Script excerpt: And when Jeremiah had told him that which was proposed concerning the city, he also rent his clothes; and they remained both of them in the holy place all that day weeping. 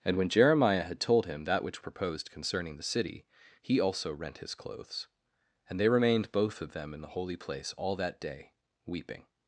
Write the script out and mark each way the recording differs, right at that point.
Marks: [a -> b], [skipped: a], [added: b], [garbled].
And when Jeremiah had told him that which [skipped: was] proposed concerning the city, he also rent his clothes; and they remained both of them in the holy place all that day weeping.